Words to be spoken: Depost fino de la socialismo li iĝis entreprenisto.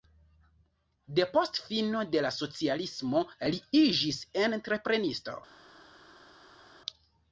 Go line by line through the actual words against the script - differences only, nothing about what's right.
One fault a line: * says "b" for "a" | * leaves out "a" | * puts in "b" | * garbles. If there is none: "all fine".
all fine